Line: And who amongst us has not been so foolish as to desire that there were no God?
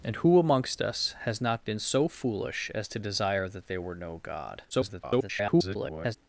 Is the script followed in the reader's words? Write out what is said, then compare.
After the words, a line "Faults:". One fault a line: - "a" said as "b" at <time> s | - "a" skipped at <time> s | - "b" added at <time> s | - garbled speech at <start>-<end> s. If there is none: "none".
And who amongst us has not been so foolish as to desire that there were no God? [garbled]
Faults:
- garbled speech at 4.7-6.2 s